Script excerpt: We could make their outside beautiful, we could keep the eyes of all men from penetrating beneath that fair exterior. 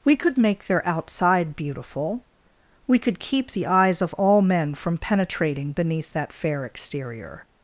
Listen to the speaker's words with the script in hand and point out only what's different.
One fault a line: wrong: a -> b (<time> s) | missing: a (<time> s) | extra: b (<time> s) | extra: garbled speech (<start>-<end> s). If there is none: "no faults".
no faults